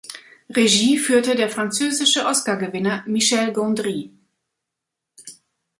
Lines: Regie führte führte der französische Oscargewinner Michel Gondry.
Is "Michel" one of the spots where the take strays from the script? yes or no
no